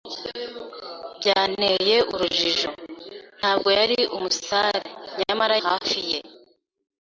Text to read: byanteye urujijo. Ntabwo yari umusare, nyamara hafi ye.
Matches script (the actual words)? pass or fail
pass